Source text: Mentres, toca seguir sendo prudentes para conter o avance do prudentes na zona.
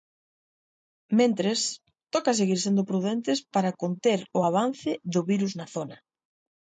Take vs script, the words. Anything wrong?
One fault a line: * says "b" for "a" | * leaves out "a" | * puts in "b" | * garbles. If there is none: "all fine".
* says "virus" for "prudentes"